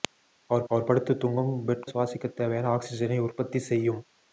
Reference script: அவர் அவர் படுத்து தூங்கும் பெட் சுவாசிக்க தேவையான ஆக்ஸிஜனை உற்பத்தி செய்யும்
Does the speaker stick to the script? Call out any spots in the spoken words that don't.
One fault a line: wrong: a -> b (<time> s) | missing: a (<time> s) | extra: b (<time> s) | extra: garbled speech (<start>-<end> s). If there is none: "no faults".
no faults